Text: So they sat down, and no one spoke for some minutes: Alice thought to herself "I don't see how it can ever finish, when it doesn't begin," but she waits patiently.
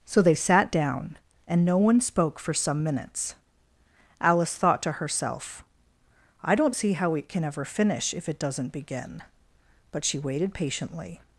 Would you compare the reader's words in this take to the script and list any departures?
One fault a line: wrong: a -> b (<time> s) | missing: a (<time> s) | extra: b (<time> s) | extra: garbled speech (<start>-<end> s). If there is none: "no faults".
wrong: when -> if (8.1 s)
wrong: waits -> waited (10.2 s)